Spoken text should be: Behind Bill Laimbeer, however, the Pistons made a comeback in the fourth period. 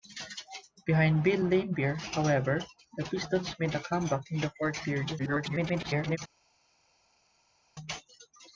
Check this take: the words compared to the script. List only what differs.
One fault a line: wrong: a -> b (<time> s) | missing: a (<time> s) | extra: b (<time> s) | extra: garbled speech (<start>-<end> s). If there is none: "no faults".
extra: garbled speech (5.2-6.2 s)